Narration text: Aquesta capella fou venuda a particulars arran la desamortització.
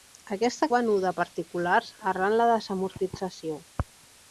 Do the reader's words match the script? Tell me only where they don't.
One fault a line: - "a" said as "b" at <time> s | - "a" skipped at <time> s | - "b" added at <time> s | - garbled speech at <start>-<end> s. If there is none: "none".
- "capella fou" skipped at 0.7 s